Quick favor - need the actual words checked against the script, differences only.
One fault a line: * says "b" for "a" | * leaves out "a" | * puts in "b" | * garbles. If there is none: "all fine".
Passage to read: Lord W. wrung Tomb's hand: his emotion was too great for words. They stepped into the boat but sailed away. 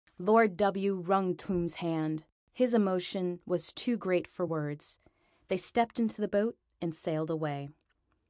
* says "and" for "but"